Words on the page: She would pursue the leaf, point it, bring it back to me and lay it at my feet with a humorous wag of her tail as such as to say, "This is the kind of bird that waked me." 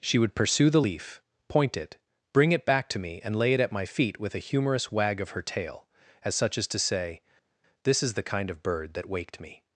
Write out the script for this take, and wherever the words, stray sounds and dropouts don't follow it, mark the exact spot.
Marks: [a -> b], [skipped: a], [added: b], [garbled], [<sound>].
She would pursue the leaf, point it, bring it back to me and lay it at my feet with a humorous wag of her tail as such as to say, "This is the kind of bird that waked me."